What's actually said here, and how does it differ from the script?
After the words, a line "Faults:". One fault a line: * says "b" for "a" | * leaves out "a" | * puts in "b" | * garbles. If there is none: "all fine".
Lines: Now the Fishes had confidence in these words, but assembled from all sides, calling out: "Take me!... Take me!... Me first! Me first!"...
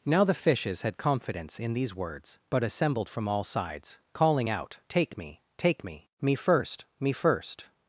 Now the Fishes had confidence in these words, but assembled from all sides, calling out: "Take me!... Take me!... Me first! Me first!"...
Faults:
all fine